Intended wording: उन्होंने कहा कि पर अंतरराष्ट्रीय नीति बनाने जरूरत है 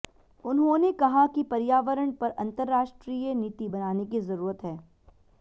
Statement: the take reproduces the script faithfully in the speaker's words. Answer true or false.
false